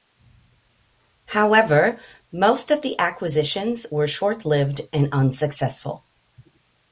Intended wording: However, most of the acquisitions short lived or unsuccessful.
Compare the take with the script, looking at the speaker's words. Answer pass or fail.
fail